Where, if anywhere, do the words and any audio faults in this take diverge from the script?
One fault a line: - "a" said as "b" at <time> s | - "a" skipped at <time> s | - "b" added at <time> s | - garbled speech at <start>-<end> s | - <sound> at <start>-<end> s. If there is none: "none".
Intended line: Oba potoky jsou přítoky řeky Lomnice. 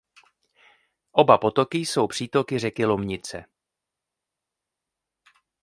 none